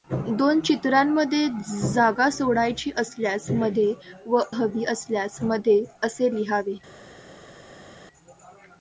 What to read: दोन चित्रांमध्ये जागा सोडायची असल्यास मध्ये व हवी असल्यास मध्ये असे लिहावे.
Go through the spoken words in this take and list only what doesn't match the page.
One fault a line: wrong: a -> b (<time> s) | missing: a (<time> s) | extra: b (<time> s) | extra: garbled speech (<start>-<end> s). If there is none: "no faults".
no faults